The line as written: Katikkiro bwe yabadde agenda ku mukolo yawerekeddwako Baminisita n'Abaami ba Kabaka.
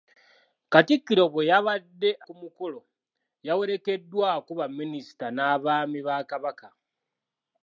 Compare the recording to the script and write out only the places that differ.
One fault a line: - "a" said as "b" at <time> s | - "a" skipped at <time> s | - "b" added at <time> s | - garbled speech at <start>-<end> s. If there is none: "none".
- "agenda" skipped at 2.1 s